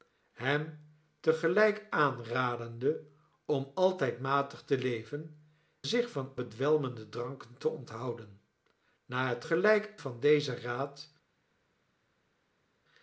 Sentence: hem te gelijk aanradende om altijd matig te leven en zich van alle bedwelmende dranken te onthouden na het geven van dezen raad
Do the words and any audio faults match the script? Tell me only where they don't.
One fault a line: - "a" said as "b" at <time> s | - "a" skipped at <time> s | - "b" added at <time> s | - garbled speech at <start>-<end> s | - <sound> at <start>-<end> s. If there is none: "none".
- "en" skipped at 5.4 s
- "alle" skipped at 6.3 s
- "geven" said as "gelijk" at 9.4 s